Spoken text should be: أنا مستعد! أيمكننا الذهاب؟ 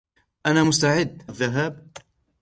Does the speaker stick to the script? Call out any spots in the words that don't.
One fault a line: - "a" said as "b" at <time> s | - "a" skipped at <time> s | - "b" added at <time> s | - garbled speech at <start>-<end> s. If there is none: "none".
- "أيمكننا" skipped at 1.2 s